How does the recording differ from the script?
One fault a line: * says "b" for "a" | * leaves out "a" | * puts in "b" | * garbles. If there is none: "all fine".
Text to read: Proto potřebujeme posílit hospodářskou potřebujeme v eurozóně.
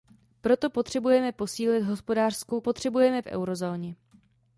all fine